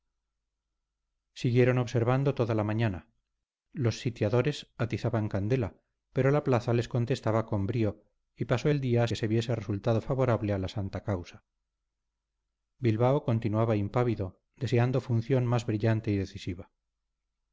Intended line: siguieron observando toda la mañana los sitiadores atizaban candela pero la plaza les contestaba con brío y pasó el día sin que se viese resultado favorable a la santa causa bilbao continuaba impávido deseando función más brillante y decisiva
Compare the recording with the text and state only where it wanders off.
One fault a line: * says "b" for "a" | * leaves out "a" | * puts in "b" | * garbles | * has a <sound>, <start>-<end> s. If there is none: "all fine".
* leaves out "sin"